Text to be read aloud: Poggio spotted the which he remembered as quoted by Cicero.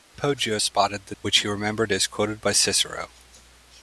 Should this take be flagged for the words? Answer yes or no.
no